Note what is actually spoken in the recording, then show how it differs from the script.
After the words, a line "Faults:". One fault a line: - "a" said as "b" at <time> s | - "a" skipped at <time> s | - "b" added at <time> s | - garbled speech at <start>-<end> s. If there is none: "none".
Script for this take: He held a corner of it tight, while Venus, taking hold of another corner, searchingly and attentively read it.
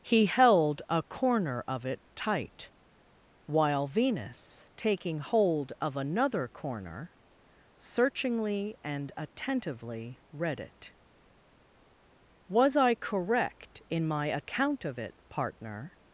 He held a corner of it tight, while Venus, taking hold of another corner, searchingly and attentively read it. 'Was I correct in my account of it, partner
Faults:
- "Was I correct in my account of it partner" added at 12.5 s